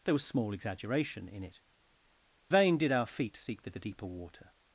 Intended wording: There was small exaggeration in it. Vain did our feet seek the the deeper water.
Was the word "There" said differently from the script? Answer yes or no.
no